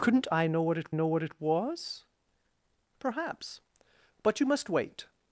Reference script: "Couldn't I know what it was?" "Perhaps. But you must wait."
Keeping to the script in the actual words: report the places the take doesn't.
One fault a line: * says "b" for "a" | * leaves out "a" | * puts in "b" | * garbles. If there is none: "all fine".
* puts in "know what it"